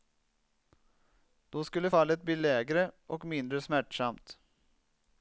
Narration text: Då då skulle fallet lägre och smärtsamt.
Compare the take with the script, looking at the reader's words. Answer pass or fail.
fail